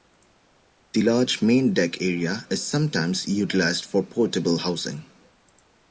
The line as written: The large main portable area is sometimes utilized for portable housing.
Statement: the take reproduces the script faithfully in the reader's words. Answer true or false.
false